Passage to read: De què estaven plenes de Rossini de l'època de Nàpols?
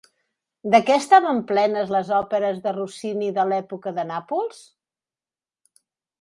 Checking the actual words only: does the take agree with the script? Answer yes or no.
no